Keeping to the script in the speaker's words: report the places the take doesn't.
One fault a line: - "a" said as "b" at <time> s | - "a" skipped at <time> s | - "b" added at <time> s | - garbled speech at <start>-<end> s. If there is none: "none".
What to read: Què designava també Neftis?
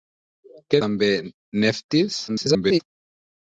- "designava" skipped at 0.8 s
- garbled speech at 2.3-2.8 s